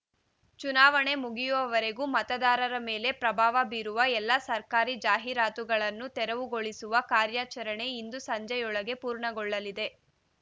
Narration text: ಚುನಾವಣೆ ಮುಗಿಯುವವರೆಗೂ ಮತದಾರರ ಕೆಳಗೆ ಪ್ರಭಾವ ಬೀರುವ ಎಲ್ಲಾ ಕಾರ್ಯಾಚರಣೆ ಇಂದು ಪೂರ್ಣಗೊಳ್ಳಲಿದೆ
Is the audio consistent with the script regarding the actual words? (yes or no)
no